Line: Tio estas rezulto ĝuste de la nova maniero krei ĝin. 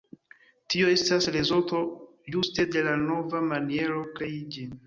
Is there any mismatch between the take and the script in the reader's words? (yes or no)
no